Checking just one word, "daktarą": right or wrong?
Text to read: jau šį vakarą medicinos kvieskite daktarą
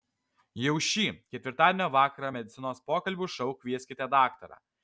right